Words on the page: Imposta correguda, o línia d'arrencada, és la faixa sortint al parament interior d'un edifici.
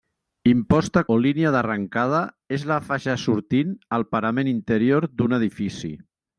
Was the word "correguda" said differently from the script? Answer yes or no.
yes